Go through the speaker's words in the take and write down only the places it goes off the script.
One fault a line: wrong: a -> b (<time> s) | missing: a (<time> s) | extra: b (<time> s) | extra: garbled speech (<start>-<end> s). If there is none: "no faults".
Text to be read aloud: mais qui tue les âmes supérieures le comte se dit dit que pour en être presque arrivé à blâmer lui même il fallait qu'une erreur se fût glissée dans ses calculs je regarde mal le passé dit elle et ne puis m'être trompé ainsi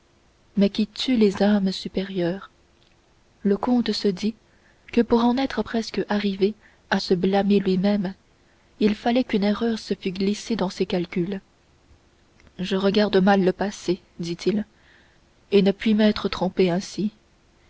missing: dit (4.3 s)
extra: se (7.0 s)
wrong: elle -> il (14.5 s)